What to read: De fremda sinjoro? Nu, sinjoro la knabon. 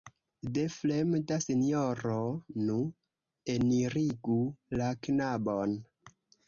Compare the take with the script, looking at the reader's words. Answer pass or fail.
fail